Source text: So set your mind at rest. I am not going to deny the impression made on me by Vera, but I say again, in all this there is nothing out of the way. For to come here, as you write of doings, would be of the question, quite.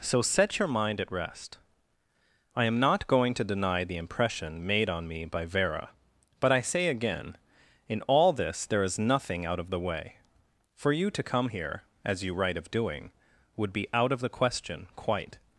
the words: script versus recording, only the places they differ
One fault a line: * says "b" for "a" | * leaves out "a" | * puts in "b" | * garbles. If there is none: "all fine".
* puts in "you"
* says "doing" for "doings"
* puts in "out"